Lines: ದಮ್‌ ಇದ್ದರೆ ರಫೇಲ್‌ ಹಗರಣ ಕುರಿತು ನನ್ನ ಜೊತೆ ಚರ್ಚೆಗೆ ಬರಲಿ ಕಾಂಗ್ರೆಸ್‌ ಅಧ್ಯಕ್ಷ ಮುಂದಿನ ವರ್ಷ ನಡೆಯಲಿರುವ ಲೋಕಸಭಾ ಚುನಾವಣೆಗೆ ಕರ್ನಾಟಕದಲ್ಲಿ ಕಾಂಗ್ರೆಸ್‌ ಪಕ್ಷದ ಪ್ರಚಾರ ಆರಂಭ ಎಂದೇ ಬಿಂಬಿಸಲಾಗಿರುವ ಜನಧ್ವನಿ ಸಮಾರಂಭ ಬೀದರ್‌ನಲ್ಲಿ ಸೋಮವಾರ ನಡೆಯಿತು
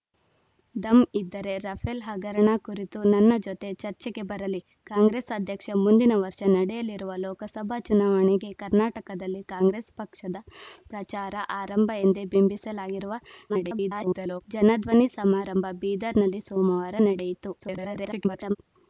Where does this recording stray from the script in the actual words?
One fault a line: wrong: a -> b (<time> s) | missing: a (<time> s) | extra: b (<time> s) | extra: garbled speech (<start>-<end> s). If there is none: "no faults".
extra: garbled speech (13.5-14.4 s)
extra: garbled speech (17.6-18.6 s)